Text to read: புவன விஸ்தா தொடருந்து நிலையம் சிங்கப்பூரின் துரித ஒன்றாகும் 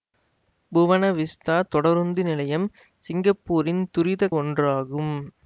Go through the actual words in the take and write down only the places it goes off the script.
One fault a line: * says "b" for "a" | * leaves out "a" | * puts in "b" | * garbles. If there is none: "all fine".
all fine